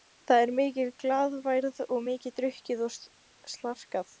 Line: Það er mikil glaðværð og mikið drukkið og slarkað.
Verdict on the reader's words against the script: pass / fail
pass